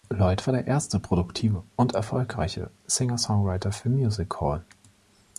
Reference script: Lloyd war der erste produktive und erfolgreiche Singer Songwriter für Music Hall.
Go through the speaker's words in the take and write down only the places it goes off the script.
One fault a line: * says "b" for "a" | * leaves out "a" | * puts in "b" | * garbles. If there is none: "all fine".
all fine